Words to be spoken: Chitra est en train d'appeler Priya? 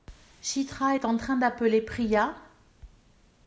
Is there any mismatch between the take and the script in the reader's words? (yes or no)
no